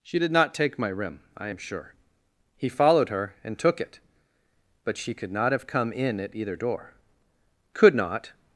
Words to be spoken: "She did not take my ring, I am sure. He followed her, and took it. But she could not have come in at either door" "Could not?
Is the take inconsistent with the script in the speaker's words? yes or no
yes